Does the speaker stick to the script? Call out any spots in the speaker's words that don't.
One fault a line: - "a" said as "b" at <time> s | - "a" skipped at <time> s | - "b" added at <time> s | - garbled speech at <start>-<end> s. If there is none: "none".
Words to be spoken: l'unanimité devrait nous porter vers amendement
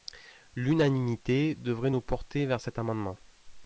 - "cet" added at 2.6 s